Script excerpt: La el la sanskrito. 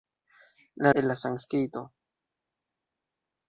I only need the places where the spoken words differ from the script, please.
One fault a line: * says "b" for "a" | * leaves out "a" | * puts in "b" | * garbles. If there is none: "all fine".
all fine